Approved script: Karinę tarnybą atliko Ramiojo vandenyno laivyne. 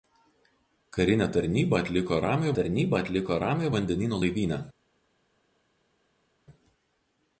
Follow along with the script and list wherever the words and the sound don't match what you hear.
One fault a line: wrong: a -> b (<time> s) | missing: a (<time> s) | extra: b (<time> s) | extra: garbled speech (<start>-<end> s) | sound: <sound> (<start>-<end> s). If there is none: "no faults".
extra: tarnybą atliko Ramiojo (2.6 s)